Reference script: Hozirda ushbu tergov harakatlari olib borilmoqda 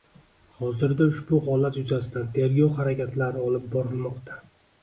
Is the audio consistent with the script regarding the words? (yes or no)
no